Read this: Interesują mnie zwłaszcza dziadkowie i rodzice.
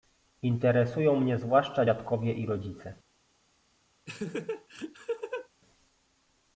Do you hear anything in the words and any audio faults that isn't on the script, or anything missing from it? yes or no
yes